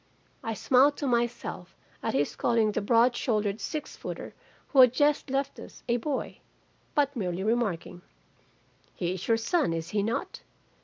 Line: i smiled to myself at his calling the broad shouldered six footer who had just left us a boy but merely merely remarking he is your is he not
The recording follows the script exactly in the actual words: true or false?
false